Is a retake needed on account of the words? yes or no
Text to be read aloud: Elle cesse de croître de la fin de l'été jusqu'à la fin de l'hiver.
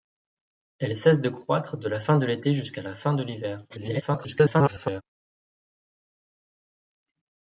yes